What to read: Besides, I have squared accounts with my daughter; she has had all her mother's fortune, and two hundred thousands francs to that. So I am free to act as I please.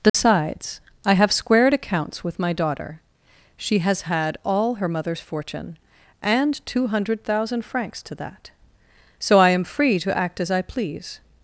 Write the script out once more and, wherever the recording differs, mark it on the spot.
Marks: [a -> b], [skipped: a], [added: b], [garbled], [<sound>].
Besides, [dropout] I have squared accounts with my daughter; she has had all her mother's fortune, and two hundred [thousands -> thousand] francs to that. So I am free to act as I please.